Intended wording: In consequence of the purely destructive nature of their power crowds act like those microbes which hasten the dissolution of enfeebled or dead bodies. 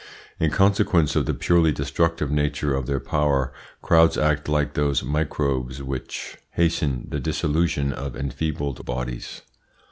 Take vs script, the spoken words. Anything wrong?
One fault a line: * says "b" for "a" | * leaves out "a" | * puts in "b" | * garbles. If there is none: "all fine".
* leaves out "or dead"